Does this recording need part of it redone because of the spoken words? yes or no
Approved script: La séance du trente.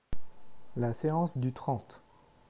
no